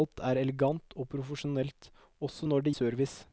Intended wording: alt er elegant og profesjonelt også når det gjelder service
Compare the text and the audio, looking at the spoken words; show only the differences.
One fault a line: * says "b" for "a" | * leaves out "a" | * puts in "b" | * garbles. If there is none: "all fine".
* leaves out "gjelder"